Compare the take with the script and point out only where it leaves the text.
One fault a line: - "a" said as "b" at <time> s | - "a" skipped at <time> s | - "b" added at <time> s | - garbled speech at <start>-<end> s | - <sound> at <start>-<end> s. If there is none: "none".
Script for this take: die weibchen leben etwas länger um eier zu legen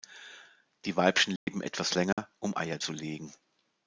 - dropout at 1.4-1.5 s
- dropout at 2.1-2.2 s